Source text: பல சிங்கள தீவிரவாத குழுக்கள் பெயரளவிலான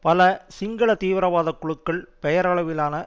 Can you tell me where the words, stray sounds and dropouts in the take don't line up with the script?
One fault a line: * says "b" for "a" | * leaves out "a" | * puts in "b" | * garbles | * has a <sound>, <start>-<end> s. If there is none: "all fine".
all fine